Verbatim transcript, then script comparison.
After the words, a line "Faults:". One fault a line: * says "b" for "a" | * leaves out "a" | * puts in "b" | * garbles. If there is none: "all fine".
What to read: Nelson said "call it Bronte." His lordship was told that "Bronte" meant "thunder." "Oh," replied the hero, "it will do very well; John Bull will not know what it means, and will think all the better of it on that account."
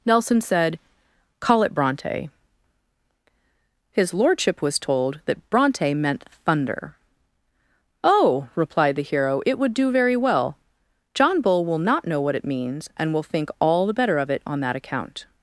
Nelson said "call it Bronte." His lordship was told that "Bronte" meant "thunder." "Oh," replied the hero, "it would do very well; John Bull will not know what it means, and will think all the better of it on that account."
Faults:
* says "would" for "will"